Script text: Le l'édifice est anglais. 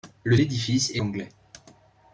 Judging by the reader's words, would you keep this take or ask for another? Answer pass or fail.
pass